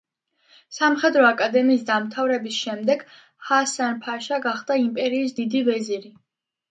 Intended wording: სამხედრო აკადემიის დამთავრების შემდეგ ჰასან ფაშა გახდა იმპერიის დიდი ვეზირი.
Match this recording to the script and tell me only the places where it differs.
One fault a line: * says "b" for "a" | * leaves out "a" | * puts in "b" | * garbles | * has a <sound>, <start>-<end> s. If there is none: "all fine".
all fine